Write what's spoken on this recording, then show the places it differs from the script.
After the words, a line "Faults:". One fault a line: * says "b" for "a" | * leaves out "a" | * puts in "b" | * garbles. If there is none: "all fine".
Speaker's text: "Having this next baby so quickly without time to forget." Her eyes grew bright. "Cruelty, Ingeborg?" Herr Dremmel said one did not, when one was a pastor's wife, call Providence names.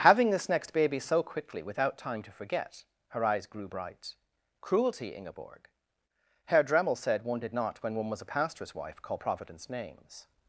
"Having this next baby so quickly without time to forget." Her eyes grew bright. "Cruelty, Ingeborg?" Herr Dremmel said one did not, when one was a pastor's wife, call Providence names.
Faults:
all fine